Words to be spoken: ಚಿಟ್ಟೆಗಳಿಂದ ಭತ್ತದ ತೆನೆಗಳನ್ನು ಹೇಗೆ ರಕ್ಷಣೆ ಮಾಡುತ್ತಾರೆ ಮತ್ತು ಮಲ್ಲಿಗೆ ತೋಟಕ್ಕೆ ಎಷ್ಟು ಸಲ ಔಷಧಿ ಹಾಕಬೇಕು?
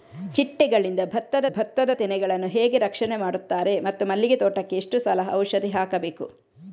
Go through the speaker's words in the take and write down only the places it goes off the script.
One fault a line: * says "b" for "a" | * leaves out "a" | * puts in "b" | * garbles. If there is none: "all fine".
* puts in "ಭತ್ತದ"